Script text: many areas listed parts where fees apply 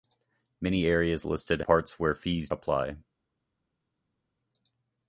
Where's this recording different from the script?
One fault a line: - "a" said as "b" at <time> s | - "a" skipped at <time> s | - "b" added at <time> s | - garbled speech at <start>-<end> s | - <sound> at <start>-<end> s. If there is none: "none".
none